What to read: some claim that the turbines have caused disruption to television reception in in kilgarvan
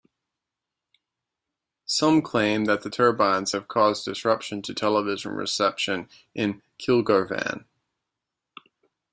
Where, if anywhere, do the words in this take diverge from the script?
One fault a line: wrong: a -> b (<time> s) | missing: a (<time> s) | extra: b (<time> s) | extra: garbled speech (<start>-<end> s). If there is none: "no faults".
missing: in (6.6 s)